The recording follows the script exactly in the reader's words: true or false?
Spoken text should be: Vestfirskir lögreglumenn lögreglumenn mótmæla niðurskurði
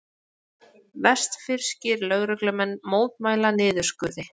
false